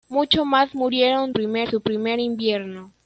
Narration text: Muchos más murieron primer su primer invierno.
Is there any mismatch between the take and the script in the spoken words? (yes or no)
no